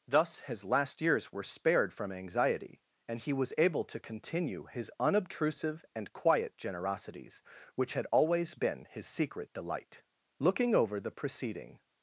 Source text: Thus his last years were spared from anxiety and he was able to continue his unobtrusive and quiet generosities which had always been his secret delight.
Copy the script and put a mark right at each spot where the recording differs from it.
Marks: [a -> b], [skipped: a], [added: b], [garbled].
Thus his last years were spared from anxiety and he was able to continue his unobtrusive and quiet generosities which had always been his secret delight. [added: Looking over the preceding]